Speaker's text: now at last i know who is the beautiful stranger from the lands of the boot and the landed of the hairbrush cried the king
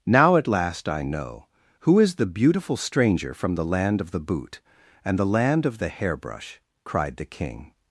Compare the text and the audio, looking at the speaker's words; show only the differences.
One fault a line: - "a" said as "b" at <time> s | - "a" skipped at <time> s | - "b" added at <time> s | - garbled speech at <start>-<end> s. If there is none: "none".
- "lands" said as "land" at 3.6 s
- "landed" said as "land" at 5.2 s